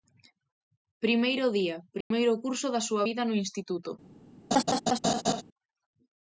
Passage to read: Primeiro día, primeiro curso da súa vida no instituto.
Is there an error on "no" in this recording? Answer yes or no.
no